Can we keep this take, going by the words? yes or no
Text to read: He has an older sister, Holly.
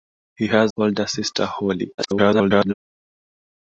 no